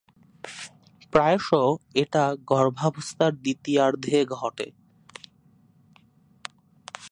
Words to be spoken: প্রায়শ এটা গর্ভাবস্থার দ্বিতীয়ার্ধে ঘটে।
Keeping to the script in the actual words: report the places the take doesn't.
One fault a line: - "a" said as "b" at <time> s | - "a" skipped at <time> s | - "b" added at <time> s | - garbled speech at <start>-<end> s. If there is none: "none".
none